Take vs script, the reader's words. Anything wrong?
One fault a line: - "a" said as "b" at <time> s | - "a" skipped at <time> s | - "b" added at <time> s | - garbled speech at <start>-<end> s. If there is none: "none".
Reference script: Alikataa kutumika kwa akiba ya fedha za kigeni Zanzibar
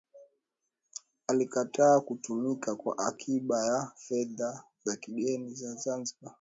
- "za" added at 5.5 s